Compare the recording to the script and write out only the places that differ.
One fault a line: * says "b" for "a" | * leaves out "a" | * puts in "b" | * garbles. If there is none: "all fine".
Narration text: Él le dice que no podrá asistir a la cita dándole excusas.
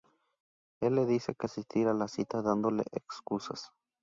* leaves out "no podrá"